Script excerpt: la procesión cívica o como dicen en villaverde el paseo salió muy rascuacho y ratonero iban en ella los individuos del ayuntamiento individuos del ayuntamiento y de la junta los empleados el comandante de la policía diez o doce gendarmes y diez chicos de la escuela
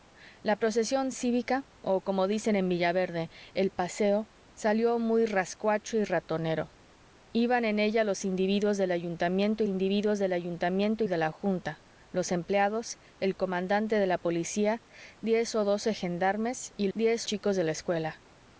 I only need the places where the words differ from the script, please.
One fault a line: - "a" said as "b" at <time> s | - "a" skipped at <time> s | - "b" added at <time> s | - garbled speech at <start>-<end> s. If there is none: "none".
none